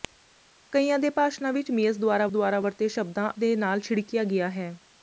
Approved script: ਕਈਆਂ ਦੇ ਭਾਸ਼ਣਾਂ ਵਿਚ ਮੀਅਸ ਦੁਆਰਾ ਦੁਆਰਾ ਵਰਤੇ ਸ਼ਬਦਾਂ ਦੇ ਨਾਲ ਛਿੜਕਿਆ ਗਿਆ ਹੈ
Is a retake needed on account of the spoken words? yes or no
no